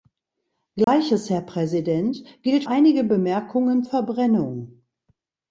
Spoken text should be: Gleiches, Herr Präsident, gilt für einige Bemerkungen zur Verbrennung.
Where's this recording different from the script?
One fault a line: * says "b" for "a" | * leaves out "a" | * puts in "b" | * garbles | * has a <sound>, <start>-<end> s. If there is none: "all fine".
* has a dropout, 0.8-0.9 s
* leaves out "für"
* leaves out "zur"